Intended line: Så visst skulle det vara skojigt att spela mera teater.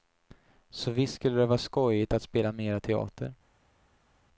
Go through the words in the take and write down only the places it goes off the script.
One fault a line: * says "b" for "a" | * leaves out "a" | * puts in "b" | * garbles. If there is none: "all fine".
all fine